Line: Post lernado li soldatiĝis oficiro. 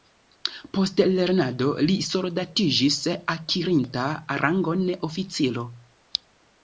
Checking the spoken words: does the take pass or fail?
fail